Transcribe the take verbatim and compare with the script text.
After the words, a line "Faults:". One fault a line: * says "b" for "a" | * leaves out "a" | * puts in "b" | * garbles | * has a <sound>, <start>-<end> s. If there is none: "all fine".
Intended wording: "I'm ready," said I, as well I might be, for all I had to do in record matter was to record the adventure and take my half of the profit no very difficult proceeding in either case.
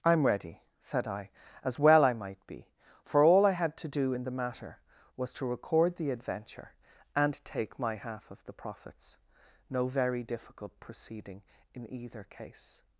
"I'm ready," said I, as well I might be, for all I had to do in the matter was to record the adventure and take my half of the profits no very difficult proceeding in either case.
Faults:
* says "the" for "record"
* says "profits" for "profit"